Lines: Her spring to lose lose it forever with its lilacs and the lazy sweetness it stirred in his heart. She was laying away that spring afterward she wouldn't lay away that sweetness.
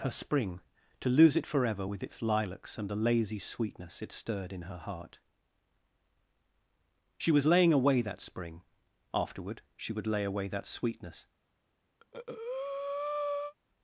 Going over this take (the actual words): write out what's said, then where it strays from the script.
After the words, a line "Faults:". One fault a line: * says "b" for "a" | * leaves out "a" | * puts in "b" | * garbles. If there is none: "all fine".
Her spring to lose it forever with its lilacs and the lazy sweetness it stirred in her heart. She was laying away that spring afterward she would lay away that sweetness.
Faults:
* leaves out "lose"
* says "her" for "his"
* says "would" for "wouldn't"